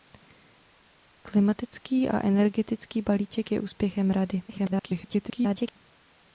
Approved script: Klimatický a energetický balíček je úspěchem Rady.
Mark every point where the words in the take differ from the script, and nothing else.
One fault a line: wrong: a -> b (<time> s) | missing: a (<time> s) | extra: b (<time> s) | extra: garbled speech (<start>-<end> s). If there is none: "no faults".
extra: garbled speech (4.5-5.8 s)